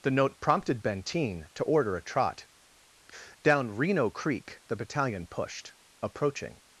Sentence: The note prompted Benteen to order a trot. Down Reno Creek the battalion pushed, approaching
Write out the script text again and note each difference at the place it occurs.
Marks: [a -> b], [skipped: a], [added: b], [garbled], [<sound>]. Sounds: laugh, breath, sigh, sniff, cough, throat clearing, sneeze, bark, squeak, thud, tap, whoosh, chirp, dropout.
The note prompted Benteen to order a trot. Down Reno Creek the battalion pushed, approaching